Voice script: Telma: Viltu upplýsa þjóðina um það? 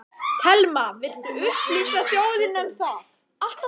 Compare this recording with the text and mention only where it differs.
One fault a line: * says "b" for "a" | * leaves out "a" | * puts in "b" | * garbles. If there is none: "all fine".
all fine